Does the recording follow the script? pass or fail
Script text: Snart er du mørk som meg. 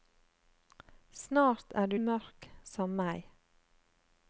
pass